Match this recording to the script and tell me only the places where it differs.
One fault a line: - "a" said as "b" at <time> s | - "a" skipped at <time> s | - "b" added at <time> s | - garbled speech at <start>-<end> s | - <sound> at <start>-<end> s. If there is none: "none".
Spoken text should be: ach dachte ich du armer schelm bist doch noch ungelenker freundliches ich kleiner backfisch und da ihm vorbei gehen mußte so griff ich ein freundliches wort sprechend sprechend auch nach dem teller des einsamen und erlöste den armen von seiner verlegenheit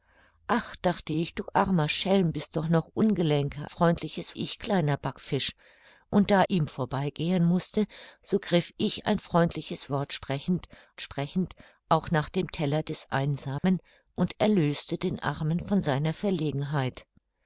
- dropout at 13.6-13.6 s